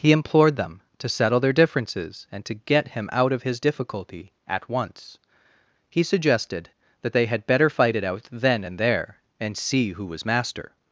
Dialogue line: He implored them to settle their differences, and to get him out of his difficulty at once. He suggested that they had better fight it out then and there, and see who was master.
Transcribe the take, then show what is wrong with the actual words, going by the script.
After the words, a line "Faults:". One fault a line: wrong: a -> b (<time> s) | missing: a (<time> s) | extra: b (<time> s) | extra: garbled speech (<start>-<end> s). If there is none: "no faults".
He implored them to settle their differences, and to get him out of his difficulty at once. He suggested that they had better fight it out then and there, and see who was master.
Faults:
no faults